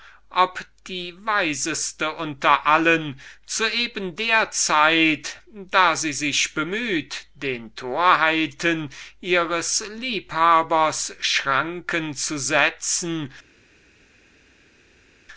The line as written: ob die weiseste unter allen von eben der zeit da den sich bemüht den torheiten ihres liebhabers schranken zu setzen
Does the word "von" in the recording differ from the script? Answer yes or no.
yes